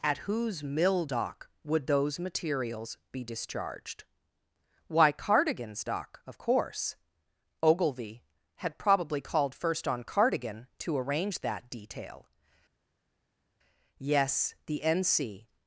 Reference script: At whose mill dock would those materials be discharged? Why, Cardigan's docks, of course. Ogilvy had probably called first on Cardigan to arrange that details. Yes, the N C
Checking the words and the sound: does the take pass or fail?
fail